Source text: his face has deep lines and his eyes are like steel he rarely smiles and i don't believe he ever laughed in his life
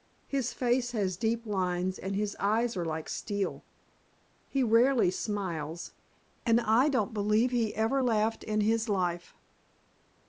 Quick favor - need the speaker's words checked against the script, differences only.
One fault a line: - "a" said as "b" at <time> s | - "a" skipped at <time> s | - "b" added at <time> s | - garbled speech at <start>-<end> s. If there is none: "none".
none